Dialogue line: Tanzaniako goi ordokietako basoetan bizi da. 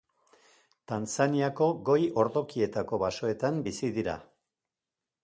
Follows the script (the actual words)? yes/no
no